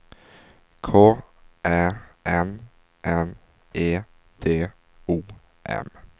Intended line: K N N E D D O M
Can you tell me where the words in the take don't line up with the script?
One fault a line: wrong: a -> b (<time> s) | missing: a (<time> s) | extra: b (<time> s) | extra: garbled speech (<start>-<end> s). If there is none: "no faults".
extra: Ä (1.6 s)
missing: D (4.7 s)